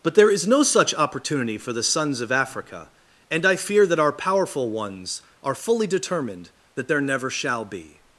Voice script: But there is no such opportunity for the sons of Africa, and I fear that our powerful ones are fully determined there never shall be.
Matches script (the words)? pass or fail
fail